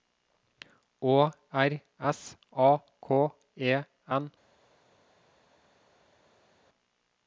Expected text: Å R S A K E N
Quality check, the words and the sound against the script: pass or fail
pass